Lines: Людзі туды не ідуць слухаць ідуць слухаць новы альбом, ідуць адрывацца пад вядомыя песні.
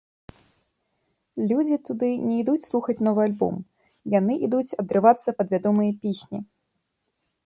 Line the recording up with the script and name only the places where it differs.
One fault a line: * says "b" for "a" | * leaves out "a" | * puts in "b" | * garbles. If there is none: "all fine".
* leaves out "ідуць слухаць"
* puts in "яны"